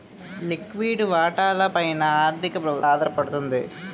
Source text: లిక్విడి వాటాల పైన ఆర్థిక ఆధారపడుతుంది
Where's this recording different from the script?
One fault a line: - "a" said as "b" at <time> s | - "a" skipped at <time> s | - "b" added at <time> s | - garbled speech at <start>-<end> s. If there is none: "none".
none